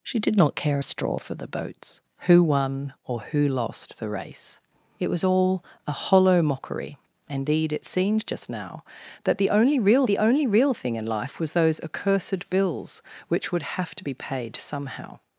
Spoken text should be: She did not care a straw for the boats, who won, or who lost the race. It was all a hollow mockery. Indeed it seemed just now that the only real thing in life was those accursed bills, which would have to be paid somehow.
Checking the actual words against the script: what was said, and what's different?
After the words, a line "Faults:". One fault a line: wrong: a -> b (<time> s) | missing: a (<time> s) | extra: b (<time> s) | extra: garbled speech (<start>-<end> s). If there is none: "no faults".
She did not care a straw for the boats, who won, or who lost the race. It was all a hollow mockery. Indeed it seemed just now that the only real the only real thing in life was those accursed bills, which would have to be paid somehow.
Faults:
extra: the only real (10.1 s)